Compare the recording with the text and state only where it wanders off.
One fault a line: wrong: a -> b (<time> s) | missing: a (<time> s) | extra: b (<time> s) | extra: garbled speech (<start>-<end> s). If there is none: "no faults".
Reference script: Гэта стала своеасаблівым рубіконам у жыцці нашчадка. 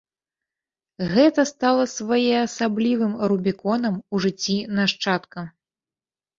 no faults